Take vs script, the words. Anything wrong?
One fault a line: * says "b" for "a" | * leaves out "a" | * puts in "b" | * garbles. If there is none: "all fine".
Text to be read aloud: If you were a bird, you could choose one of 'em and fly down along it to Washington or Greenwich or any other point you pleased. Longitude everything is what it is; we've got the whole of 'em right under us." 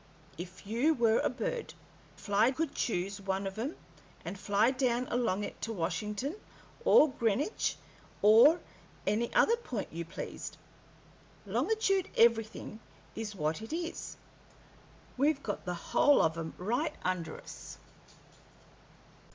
* says "fly" for "you"